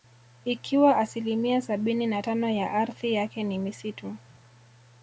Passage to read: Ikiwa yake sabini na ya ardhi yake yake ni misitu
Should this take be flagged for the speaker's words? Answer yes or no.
yes